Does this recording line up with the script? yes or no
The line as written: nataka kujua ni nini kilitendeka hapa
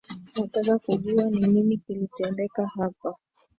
yes